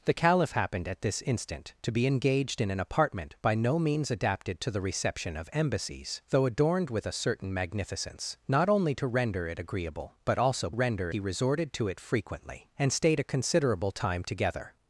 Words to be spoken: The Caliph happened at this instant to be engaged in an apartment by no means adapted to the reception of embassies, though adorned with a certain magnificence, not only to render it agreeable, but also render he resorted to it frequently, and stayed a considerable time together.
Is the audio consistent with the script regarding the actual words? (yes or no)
yes